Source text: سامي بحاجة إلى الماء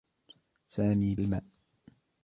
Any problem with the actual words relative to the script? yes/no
yes